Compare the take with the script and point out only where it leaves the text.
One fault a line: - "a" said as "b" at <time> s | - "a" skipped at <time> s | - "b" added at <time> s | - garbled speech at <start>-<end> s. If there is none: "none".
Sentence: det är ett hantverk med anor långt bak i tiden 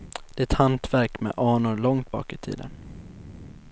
none